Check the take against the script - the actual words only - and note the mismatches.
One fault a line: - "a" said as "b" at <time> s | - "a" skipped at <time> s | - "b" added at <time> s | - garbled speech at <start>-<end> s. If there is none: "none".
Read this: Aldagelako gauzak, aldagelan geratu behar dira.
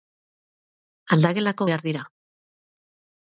- "gauzak aldagelan geratu" skipped at 1.7 s